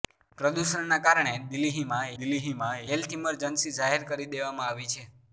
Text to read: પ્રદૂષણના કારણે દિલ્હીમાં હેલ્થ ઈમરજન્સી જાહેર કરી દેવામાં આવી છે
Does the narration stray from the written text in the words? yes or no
yes